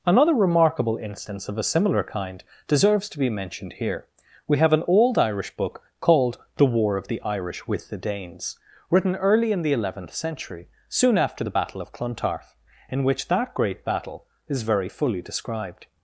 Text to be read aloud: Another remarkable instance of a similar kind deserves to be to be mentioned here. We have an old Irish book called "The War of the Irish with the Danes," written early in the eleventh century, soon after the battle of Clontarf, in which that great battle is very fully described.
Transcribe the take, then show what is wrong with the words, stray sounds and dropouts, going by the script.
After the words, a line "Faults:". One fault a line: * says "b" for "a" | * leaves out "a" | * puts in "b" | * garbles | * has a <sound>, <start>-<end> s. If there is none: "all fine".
Another remarkable instance of a similar kind deserves to be mentioned here. We have an old Irish book called "The War of the Irish with the Danes," written early in the eleventh century, soon after the battle of Clontarf, in which that great battle is very fully described.
Faults:
* leaves out "to be"